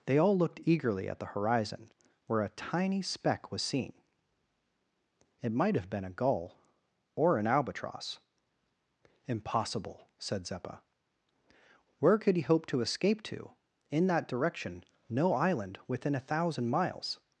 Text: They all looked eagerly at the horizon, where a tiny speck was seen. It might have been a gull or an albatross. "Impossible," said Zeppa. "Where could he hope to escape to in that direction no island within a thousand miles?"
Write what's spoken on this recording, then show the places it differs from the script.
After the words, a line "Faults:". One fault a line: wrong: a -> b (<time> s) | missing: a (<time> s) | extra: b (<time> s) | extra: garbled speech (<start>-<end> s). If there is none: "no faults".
They all looked eagerly at the horizon, where a tiny speck was seen. It might have been a gull or an albatross. "Impossible," said Zeppa. "Where could he hope to escape to in that direction no island within a thousand miles?"
Faults:
no faults